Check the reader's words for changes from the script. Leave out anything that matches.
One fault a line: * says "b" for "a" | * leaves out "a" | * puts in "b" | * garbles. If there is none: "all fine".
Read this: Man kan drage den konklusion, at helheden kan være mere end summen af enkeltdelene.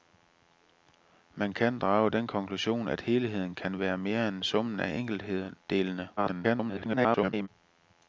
* garbles